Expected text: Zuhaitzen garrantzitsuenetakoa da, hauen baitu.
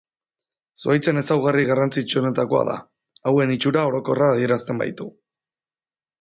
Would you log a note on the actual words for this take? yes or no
yes